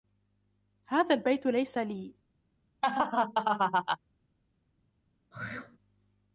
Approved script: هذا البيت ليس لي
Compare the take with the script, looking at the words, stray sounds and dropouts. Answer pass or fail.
fail